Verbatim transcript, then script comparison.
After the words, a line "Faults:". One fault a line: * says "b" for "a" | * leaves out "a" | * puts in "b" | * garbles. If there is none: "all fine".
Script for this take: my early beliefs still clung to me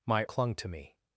my clung to me
Faults:
* leaves out "early beliefs still"